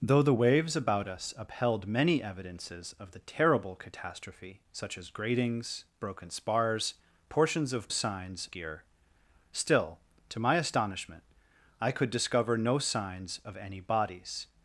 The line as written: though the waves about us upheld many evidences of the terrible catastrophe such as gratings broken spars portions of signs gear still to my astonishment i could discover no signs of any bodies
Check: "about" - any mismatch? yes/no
no